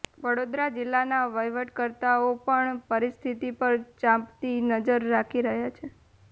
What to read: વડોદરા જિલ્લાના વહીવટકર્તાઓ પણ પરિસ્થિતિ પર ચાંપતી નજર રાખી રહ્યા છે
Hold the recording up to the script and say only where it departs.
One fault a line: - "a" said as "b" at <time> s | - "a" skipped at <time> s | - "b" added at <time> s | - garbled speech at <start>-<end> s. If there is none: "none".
none